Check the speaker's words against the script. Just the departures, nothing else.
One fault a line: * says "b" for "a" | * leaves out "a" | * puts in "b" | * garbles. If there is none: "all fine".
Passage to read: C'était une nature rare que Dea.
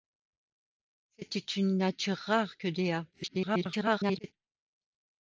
* garbles